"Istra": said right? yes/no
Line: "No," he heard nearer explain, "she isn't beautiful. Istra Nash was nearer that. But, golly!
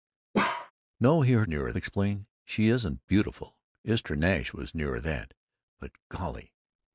yes